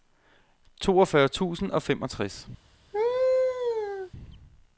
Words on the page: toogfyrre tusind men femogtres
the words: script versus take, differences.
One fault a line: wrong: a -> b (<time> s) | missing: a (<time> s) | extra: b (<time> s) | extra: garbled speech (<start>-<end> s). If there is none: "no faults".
wrong: men -> og (1.7 s)